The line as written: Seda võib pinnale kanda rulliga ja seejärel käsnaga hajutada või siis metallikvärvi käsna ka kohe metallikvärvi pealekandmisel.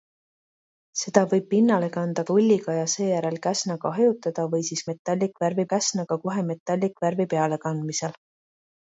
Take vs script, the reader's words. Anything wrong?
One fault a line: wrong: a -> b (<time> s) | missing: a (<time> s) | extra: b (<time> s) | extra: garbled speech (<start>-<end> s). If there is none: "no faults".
no faults